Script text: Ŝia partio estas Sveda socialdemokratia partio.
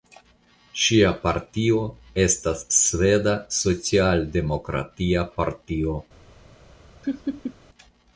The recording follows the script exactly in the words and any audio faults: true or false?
false